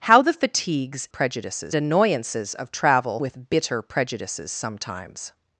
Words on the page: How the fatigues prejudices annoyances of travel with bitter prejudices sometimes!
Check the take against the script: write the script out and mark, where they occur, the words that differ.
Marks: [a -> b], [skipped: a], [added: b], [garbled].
How the fatigues prejudices annoyances of travel with bitter prejudices sometimes!